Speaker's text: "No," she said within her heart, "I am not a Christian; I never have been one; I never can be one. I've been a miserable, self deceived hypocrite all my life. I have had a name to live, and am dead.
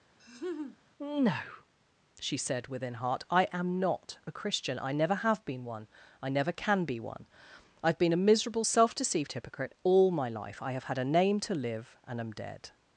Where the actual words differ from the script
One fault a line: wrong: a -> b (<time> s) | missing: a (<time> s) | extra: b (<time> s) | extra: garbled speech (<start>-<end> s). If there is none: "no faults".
missing: her (2.9 s)